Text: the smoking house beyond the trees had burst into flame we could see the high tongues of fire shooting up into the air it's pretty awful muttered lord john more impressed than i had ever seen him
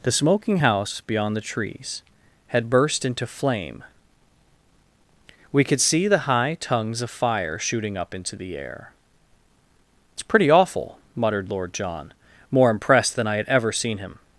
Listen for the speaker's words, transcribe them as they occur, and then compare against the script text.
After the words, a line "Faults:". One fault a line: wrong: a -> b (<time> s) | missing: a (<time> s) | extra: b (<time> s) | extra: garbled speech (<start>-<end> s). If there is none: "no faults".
the smoking house beyond the trees had burst into flame we could see the high tongues of fire shooting up into the air it's pretty awful muttered lord john more impressed than i had ever seen him
Faults:
no faults